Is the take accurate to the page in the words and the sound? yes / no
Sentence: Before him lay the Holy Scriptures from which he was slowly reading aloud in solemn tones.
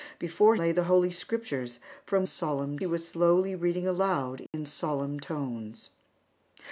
no